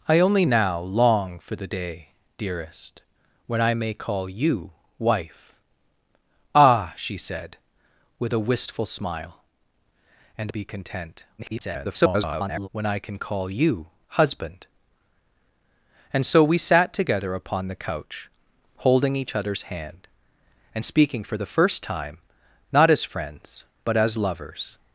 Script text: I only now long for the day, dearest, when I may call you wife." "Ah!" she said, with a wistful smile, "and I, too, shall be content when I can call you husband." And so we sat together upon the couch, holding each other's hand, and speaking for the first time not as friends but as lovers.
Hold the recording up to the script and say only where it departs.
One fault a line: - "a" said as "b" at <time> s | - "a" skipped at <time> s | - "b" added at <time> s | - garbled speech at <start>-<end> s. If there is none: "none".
- "I too shall" skipped at 10.5 s
- garbled speech at 11.4-12.7 s